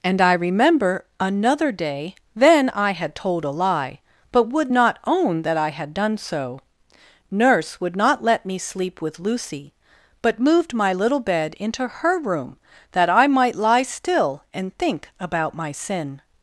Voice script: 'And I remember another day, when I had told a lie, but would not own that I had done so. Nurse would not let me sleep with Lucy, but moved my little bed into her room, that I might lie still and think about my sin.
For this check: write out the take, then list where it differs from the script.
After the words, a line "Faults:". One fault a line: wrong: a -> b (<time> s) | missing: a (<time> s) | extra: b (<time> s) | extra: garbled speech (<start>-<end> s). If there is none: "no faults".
'And I remember another day, then I had told a lie, but would not own that I had done so. Nurse would not let me sleep with Lucy, but moved my little bed into her room, that I might lie still and think about my sin.
Faults:
wrong: when -> then (2.4 s)